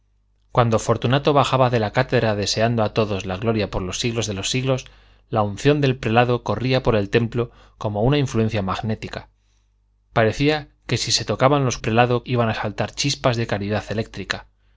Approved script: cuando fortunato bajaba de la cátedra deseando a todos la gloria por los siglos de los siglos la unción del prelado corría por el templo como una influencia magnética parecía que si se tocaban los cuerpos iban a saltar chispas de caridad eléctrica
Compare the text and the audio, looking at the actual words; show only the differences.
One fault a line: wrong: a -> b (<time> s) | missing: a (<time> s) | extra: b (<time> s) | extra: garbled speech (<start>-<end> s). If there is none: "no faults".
wrong: cuerpos -> prelado (11.8 s)